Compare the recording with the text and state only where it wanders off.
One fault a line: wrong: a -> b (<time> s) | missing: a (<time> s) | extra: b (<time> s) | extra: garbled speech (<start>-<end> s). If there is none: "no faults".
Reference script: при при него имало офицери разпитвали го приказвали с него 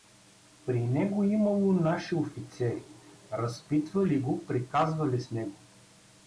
missing: при (0.9 s)
extra: наши (1.7 s)